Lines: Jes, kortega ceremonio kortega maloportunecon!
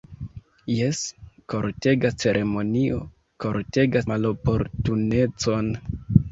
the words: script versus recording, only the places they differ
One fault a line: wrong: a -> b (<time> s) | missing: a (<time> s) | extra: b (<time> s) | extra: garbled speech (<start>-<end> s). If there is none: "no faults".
no faults